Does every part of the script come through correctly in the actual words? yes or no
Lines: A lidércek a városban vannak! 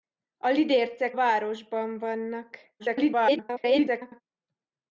no